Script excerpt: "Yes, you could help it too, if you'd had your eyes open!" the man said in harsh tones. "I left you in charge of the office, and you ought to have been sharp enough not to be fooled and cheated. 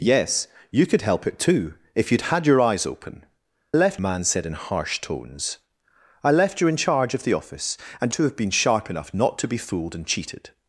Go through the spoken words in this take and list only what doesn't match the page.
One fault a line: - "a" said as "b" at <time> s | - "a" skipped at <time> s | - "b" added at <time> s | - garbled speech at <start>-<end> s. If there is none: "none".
- "the" said as "left" at 3.7 s
- "you ought" skipped at 8.1 s